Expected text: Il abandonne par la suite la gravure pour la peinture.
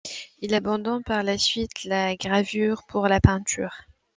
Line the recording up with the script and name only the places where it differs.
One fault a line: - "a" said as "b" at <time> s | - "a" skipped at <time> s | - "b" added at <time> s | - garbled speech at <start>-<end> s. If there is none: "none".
none